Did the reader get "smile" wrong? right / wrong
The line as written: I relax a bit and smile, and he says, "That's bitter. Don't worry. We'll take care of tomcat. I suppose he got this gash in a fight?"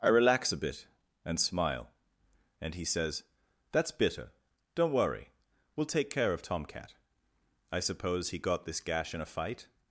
right